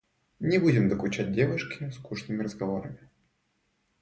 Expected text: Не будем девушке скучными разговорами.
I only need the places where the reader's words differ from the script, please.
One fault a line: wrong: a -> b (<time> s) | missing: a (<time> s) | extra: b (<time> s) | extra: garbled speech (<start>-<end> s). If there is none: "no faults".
extra: докучать (0.9 s)